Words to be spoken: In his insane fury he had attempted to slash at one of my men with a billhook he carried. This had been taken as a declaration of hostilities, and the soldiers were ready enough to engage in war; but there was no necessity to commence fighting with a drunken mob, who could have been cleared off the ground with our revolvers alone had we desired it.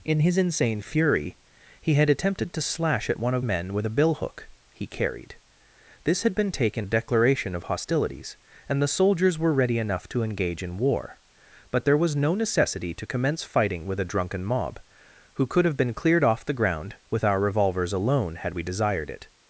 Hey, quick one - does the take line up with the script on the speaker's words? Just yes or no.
no